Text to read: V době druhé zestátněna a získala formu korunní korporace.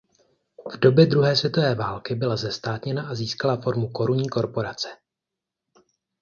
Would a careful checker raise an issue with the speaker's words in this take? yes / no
yes